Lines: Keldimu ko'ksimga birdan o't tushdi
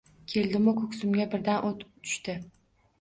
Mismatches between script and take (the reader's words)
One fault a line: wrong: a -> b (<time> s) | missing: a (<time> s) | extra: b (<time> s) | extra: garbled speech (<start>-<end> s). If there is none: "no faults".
no faults